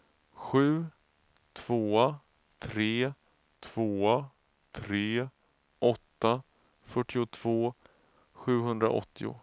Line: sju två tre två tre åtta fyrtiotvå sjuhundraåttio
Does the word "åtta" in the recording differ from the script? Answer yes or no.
no